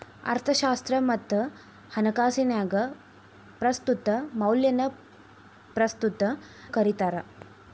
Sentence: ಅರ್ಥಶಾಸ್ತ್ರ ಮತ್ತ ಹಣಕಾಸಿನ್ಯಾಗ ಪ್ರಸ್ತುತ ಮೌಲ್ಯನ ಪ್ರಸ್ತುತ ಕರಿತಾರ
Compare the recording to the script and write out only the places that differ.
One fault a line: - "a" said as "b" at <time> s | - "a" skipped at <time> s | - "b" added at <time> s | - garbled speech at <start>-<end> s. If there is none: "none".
none